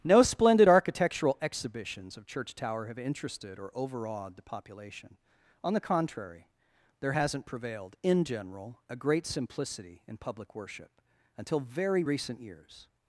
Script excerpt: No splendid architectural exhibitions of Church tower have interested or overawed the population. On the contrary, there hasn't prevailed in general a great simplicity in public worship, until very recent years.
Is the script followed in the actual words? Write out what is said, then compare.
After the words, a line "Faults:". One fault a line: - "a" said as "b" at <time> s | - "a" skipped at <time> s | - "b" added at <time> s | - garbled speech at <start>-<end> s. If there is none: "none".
No splendid architectural exhibitions of Church tower have interested or overawed the population. On the contrary, there hasn't prevailed in general a great simplicity in public worship, until very recent years.
Faults:
none